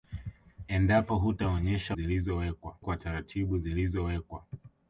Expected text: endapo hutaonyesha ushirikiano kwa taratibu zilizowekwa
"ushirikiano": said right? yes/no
no